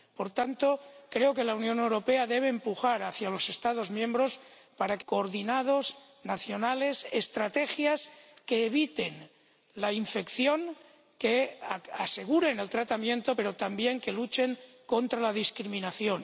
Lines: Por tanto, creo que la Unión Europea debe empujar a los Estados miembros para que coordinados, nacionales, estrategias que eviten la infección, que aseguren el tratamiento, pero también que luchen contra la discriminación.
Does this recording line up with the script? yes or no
yes